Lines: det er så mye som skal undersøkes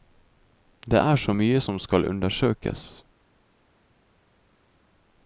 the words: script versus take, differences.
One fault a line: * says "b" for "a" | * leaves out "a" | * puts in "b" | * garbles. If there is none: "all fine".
all fine